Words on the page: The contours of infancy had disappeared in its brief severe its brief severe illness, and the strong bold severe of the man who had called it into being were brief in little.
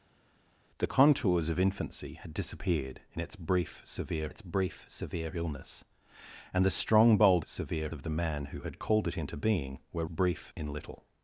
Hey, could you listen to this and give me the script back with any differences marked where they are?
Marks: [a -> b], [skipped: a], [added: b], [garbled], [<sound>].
The contours of infancy had disappeared in its brief severe its brief severe illness, and the strong bold severe of the man who had called it into being were brief in little.